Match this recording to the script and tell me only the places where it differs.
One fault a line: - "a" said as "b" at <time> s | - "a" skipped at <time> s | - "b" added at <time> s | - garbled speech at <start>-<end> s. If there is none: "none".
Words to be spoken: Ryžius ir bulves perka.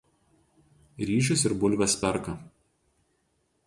none